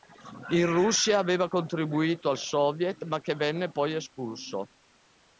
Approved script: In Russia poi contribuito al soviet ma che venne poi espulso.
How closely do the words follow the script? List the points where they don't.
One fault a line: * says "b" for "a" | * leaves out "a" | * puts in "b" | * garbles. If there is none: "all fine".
* says "aveva" for "poi"